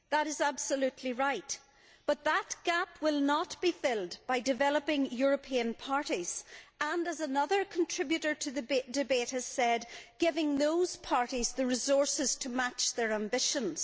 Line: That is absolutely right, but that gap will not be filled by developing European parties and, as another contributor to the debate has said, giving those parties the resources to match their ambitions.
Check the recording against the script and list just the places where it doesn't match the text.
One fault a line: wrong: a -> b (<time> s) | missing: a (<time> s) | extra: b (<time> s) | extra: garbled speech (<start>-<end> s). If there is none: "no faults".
no faults